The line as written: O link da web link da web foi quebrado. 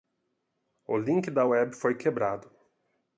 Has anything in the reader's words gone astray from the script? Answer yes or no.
yes